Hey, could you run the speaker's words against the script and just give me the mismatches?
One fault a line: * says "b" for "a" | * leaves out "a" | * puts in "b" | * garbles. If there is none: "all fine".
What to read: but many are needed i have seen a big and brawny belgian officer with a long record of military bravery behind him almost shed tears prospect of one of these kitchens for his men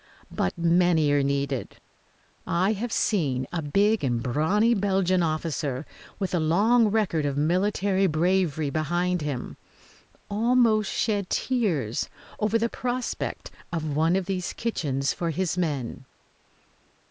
* puts in "over the"